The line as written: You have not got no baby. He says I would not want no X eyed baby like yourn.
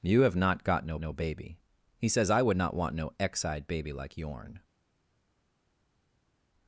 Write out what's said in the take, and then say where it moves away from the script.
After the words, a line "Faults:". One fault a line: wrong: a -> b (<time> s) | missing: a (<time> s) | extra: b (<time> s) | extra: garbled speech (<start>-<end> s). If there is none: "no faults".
You have not got no no baby. He says I would not want no X eyed baby like yourn.
Faults:
extra: no (1.0 s)